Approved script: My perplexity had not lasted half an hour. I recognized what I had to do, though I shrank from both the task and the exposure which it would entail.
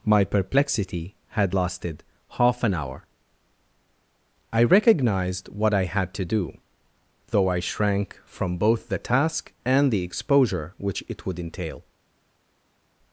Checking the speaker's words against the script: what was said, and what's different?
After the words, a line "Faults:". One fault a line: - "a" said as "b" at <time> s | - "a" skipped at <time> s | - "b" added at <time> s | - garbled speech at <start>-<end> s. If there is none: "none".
My perplexity had lasted half an hour. I recognized what I had to do, though I shrank from both the task and the exposure which it would entail.
Faults:
- "not" skipped at 1.6 s